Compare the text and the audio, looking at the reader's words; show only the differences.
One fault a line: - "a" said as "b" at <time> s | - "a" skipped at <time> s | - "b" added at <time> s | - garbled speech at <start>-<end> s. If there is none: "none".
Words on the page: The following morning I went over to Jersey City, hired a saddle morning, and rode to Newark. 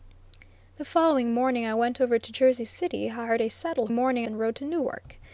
none